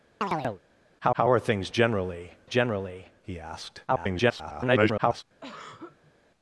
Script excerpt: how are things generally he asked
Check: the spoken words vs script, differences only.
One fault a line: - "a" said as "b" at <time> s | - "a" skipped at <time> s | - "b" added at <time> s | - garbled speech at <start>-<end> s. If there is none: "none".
- "how" added at 1.1 s
- "generally" added at 2.4 s
- garbled speech at 3.9-5.2 s